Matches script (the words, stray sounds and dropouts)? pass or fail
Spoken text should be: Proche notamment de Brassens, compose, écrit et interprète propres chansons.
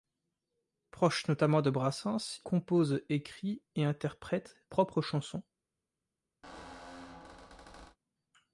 fail